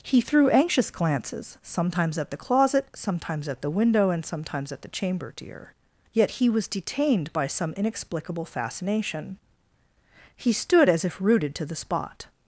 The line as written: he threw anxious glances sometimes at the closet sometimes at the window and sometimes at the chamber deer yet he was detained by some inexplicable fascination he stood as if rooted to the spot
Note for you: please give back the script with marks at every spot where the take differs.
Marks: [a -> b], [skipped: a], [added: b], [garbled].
he threw anxious glances sometimes at the closet sometimes at the window and sometimes at the chamber deer yet he was detained by some inexplicable fascination he stood as if rooted to the spot